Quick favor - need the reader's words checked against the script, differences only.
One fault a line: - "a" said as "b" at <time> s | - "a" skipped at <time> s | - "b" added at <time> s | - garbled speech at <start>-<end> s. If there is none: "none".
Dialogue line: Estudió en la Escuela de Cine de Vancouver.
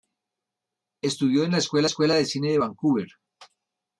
- "Escuela" added at 1.9 s